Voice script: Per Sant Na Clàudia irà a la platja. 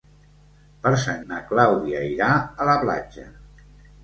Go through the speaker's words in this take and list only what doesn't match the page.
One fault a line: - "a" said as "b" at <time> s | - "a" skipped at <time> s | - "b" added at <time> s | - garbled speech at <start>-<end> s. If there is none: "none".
none